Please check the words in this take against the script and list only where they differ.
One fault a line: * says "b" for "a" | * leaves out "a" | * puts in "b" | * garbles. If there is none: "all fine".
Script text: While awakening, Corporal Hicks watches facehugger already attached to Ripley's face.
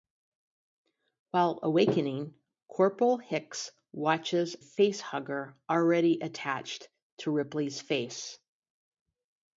all fine